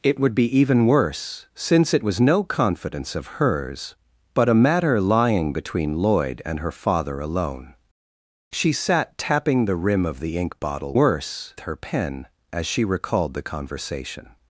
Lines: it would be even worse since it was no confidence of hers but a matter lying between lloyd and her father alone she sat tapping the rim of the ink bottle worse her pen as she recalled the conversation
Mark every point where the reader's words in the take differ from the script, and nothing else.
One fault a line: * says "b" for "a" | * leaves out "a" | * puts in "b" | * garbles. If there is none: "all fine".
all fine